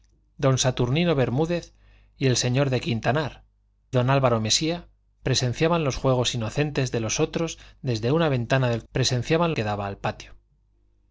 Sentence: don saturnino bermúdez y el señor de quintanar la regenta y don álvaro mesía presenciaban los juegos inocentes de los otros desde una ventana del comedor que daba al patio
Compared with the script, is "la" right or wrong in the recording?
wrong